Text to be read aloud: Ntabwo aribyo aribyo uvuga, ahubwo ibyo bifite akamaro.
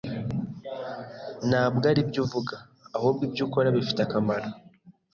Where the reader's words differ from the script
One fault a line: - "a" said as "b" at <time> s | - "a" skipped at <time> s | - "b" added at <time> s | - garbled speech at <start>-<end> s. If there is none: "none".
- "aribyo" skipped at 2.2 s
- "ukora" added at 3.5 s